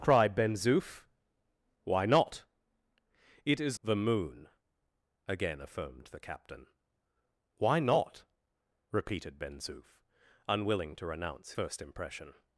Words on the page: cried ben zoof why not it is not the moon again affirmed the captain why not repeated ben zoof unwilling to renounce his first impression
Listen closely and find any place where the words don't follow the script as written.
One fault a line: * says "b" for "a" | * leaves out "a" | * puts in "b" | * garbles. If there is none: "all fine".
* leaves out "not"
* leaves out "his"